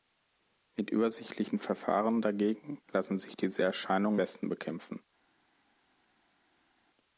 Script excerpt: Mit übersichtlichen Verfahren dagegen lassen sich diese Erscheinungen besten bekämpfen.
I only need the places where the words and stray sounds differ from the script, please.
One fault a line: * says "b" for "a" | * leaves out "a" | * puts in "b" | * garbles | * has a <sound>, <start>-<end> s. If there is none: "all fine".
all fine